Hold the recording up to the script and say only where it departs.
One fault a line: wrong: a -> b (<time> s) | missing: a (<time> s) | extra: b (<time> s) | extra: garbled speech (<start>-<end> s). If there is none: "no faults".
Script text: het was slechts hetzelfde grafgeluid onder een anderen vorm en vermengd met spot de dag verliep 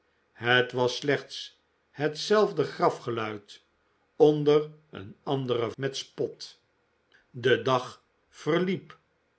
missing: vorm en vermengd (5.7 s)